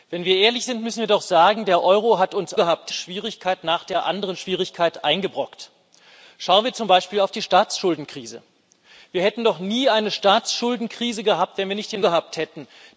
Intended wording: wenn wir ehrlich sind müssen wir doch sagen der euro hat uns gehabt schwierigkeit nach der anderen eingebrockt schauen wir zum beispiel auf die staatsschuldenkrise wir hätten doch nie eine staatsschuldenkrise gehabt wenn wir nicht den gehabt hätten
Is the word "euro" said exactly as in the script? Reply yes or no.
yes